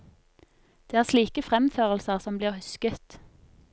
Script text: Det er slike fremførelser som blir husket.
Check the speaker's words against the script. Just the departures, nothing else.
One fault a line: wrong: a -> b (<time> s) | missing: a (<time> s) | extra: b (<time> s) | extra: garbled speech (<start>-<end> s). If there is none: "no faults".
no faults